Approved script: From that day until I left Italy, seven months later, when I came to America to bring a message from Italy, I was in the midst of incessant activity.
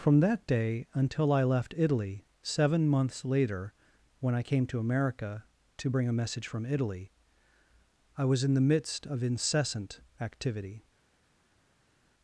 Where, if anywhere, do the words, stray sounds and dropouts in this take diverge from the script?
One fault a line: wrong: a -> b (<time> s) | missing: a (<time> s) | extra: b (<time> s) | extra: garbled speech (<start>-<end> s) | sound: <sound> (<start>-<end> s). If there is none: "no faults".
no faults